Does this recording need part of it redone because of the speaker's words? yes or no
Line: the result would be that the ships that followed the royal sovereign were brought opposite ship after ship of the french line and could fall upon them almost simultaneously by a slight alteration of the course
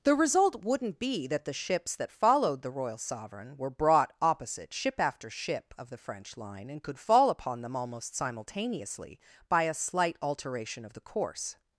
yes